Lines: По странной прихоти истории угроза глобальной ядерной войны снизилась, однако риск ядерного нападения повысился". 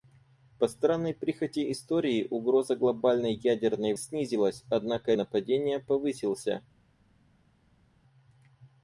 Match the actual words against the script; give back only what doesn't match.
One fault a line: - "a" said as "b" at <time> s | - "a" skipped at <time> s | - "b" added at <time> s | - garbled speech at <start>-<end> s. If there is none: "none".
- "войны" skipped at 3.9 s
- "риск ядерного" skipped at 5.1 s